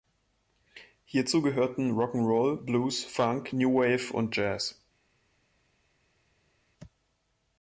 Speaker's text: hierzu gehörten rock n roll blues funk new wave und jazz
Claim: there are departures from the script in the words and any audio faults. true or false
false